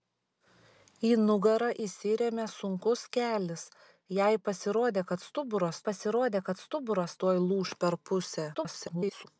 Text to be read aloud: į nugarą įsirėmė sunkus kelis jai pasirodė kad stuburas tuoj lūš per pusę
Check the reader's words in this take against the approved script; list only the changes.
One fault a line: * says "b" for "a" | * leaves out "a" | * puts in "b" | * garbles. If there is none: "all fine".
* puts in "pasirodė kad stuburas"
* garbles